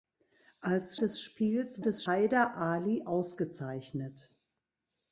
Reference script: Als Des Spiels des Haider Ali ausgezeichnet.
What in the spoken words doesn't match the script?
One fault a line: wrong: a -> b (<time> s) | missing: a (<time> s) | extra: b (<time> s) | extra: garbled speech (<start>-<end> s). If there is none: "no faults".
no faults